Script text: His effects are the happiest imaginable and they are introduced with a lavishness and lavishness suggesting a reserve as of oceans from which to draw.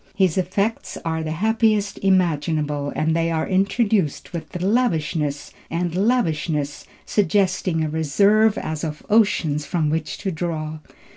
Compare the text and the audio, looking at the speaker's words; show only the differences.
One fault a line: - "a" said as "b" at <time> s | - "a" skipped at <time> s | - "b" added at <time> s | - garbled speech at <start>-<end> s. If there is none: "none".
none